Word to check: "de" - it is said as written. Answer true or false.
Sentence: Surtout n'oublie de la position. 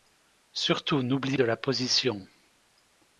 true